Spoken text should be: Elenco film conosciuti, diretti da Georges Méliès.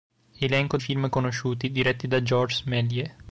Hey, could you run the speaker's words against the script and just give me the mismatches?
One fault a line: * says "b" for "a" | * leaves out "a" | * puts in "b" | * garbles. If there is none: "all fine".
all fine